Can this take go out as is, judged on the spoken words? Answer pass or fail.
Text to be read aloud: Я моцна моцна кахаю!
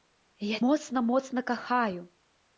pass